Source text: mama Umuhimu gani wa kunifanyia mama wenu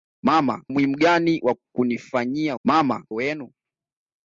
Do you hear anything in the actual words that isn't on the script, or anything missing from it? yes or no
no